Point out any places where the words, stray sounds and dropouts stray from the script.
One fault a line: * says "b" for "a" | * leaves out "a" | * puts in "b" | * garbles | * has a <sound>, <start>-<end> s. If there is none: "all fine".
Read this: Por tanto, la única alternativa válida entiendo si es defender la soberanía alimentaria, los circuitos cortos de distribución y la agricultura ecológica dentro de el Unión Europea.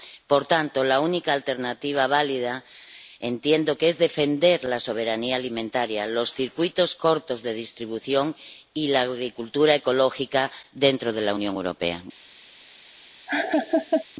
* says "que" for "si"
* says "la" for "el"
* has a laugh, 13.3-14.0 s